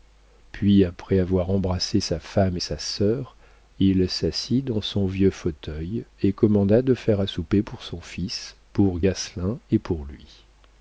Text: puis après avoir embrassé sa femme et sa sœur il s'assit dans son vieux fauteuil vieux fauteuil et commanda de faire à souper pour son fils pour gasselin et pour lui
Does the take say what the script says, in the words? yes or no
no